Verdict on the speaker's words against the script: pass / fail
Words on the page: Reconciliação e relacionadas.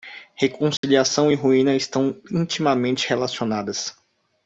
fail